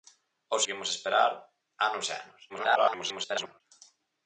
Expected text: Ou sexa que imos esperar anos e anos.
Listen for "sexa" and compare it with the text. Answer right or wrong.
wrong